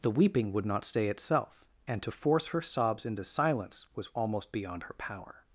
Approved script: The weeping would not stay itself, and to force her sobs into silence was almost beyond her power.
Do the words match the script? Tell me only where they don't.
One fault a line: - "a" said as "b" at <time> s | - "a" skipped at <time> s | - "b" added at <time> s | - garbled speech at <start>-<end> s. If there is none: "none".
none